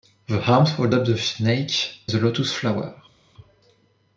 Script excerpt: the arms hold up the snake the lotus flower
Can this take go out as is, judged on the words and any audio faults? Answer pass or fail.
pass